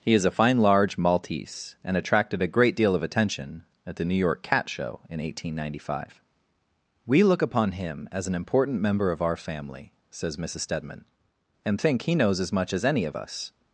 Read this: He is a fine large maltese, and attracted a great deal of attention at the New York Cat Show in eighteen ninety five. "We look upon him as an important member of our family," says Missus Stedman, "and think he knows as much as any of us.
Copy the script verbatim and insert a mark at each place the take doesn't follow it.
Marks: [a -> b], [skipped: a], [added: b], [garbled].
He is a fine large maltese, and attracted a great deal of attention at the New York Cat Show in eighteen ninety five. "We look upon him as an important member of our family," says Missus Stedman, "and think he knows as much as any of us.